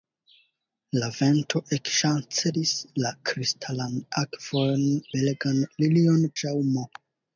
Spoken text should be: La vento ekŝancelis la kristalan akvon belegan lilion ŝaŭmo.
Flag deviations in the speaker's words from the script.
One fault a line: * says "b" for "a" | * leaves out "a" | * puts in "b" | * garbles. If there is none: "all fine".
all fine